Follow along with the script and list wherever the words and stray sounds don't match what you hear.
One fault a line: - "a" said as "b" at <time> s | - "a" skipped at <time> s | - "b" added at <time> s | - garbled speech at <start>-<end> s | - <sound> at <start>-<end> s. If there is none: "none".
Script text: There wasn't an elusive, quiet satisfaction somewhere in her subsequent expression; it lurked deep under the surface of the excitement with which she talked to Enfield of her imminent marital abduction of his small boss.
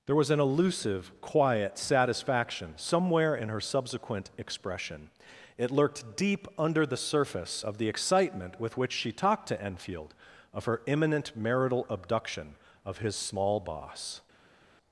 - "wasn't" said as "was" at 0.1 s